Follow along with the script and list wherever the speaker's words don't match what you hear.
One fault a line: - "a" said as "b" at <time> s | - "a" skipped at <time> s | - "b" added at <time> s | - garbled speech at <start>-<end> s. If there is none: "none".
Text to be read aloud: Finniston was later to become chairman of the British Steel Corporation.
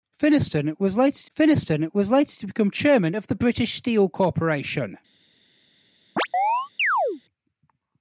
- "finniston was later" added at 1.3 s